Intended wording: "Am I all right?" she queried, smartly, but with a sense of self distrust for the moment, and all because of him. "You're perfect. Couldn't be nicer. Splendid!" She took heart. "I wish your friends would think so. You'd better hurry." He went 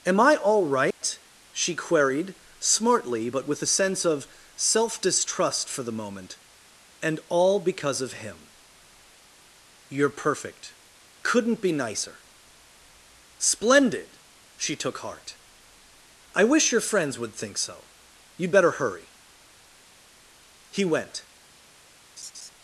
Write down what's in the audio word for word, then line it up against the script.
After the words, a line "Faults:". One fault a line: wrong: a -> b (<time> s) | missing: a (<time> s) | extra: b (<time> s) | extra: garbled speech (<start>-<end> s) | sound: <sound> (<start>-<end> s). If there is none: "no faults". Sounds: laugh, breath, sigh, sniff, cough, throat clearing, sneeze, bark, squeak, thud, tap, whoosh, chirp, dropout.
"Am I all right?" she queried, smartly, but with a sense of self distrust for the moment, and all because of him. "You're perfect. Couldn't be nicer. Splendid!" She took heart. "I wish your friends would think so. You'd better hurry." He went
Faults:
sound: dropout (0.9-1.0 s)
sound: laugh (22.2-22.5 s)